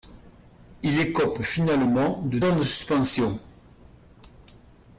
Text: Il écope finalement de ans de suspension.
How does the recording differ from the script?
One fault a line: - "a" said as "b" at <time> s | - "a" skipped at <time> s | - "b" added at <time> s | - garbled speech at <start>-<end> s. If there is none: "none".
none